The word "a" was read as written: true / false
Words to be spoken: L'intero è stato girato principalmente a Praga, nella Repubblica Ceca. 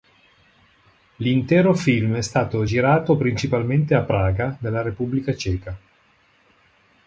true